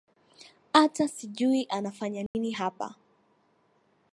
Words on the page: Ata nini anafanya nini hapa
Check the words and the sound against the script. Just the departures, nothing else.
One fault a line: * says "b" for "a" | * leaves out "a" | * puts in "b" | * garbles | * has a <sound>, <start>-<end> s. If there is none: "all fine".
* says "sijui" for "nini"
* has a dropout, 2.3-2.3 s